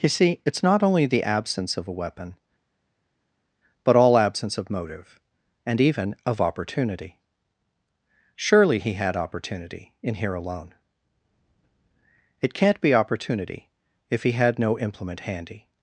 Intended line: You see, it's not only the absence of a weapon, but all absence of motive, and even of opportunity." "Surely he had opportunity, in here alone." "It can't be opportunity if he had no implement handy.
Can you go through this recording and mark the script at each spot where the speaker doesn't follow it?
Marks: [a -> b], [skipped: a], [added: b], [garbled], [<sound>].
You see, it's not only the absence of a weapon, but all absence of motive, and even of opportunity." "Surely he had opportunity, in here alone." "It can't be opportunity if he had no implement handy.